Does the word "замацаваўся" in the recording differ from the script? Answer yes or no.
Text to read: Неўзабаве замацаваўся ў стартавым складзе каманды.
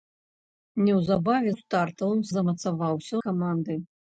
yes